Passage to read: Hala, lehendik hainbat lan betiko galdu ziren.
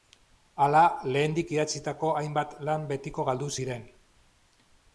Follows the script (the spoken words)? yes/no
no